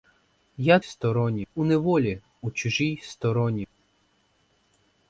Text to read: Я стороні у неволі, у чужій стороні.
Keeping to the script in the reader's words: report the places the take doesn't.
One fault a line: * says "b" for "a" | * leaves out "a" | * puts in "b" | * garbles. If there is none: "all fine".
all fine